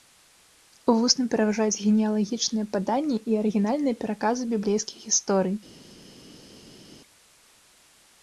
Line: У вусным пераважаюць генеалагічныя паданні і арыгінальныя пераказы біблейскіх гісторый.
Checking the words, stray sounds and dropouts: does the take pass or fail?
pass